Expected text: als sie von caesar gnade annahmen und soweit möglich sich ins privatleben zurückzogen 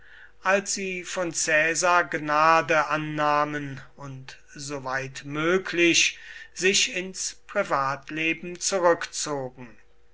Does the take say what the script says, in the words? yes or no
yes